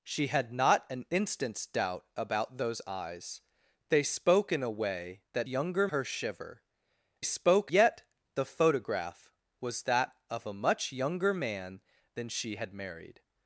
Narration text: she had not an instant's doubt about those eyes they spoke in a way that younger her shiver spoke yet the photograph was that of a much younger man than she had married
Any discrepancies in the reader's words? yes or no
no